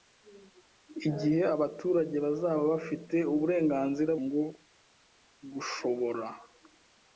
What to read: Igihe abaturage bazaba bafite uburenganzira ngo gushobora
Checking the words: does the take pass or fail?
pass